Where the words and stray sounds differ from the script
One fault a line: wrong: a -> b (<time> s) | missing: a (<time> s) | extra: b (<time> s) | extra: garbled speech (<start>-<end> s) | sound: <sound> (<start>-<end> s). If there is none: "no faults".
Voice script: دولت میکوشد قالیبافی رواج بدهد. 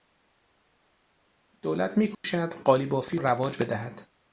sound: dropout (2.1-2.2 s)